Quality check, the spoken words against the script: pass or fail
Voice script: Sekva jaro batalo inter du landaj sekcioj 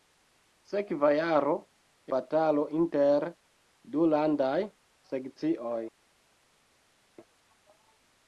pass